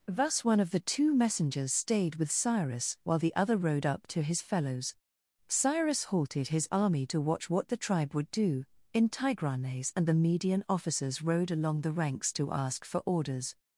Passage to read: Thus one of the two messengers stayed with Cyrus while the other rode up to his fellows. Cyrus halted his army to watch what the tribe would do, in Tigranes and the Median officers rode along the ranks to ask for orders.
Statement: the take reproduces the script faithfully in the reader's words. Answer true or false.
true